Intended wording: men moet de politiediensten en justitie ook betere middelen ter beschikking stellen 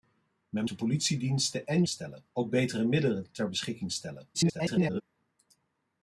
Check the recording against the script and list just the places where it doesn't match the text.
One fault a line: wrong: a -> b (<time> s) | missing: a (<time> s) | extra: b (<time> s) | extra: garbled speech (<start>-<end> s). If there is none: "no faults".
missing: moet (0.7 s)
wrong: justitie -> stellen (1.9 s)
extra: garbled speech (4.3-5.0 s)